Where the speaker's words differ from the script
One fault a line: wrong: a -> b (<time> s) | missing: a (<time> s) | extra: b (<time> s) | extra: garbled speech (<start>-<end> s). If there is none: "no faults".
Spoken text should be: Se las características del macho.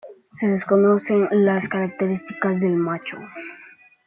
extra: desconocen (0.5 s)